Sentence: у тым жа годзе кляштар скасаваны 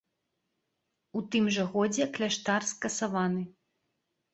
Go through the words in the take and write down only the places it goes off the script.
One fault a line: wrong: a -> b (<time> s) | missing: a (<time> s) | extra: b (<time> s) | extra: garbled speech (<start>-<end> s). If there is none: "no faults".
no faults